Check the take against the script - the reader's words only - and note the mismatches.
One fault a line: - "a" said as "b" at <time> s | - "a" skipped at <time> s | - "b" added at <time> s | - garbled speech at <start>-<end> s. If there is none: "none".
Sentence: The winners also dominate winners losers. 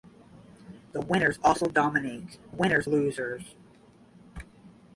none